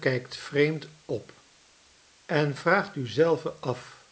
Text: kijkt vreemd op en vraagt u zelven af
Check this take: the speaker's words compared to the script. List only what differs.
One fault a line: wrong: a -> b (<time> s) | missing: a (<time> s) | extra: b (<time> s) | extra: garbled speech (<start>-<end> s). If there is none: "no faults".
no faults